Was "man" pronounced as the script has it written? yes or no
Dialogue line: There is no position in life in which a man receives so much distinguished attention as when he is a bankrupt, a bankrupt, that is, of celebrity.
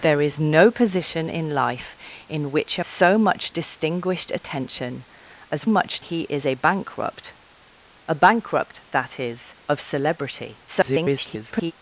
no